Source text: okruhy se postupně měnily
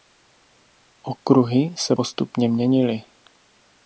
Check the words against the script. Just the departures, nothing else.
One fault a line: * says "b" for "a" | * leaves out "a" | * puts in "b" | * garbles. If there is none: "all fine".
all fine